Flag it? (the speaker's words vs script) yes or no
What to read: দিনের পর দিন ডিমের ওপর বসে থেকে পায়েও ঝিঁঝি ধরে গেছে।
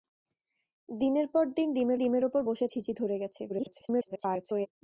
yes